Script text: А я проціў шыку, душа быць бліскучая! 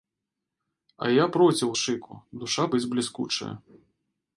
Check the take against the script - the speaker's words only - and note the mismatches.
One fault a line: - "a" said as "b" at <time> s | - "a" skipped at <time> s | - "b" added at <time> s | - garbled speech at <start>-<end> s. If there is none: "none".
none